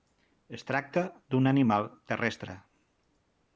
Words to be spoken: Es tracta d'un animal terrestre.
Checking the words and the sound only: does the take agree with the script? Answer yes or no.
yes